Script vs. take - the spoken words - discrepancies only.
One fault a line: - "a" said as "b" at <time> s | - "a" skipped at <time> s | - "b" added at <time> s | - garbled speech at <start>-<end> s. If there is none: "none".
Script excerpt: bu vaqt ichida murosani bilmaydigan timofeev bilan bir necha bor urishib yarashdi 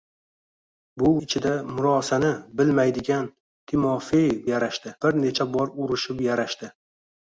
- "vaqt" skipped at 1.1 s
- "bilan" said as "yarashdi" at 4.5 s